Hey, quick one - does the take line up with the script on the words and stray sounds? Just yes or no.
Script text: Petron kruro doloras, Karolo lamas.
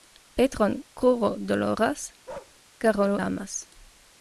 no